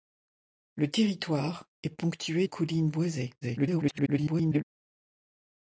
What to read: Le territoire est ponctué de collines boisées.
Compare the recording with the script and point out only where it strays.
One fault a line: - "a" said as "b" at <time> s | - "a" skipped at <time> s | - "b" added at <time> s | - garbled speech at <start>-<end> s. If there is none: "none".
- "de" skipped at 2.5 s
- garbled speech at 3.4-4.7 s